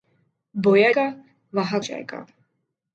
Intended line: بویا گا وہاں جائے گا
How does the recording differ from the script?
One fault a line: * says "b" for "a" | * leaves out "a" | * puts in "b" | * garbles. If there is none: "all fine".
all fine